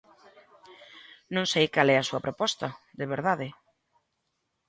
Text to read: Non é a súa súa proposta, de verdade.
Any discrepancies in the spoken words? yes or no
yes